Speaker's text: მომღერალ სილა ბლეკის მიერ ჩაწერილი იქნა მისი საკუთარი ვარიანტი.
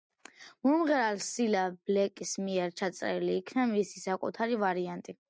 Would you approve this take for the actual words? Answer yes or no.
yes